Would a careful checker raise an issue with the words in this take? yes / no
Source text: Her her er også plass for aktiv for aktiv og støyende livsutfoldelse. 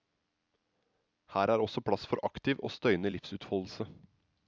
yes